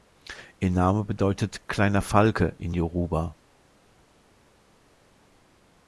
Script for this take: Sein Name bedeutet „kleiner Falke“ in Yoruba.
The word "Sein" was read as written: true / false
false